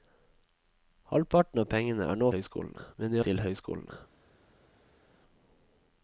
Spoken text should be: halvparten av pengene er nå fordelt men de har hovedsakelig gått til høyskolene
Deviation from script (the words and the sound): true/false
true